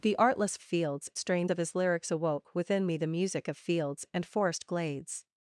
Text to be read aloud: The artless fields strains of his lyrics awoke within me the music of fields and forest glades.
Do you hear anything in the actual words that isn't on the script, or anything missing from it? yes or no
no